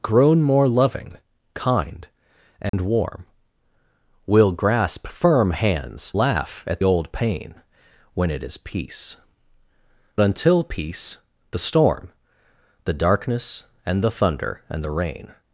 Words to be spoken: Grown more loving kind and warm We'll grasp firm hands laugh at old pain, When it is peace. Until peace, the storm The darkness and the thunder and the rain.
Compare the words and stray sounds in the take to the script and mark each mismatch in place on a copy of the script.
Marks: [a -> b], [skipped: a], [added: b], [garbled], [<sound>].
Grown more loving kind and [dropout] warm We'll grasp firm hands laugh at old pain, When it is peace. Until peace, the storm The darkness and the thunder and the rain.